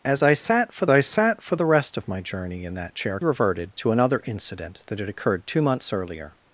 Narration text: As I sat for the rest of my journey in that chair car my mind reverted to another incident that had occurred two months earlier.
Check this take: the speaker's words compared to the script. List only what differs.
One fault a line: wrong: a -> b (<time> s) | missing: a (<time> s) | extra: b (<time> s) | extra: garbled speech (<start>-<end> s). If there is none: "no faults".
extra: I sat for (0.9 s)
missing: car my mind (3.2 s)